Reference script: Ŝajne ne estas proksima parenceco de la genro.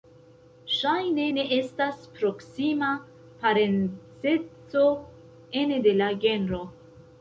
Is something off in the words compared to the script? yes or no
yes